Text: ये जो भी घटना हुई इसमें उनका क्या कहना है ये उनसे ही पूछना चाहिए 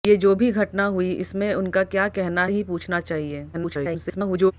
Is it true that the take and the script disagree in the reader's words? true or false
true